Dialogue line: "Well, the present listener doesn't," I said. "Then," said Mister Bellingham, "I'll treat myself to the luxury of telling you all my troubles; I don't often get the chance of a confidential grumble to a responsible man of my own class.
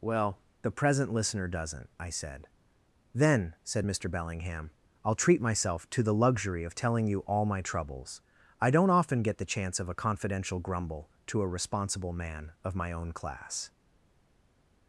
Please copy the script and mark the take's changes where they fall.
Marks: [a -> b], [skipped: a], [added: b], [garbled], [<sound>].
"Well, the present listener doesn't," I said. "Then," said Mister Bellingham, "I'll treat myself to the luxury of telling you all my troubles; I don't often get the chance of a confidential grumble to a responsible man of my own class.